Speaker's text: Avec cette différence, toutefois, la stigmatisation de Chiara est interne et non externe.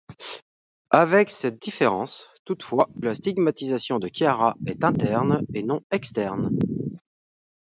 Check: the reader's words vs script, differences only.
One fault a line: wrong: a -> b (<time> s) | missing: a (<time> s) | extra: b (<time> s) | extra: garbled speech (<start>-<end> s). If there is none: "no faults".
no faults